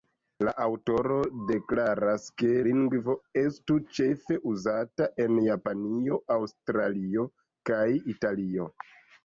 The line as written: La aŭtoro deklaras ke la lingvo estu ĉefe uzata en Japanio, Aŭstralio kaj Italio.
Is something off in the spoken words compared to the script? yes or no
yes